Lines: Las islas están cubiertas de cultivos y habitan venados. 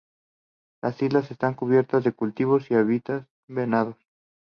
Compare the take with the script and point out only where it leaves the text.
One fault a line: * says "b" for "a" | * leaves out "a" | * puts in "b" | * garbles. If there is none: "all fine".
all fine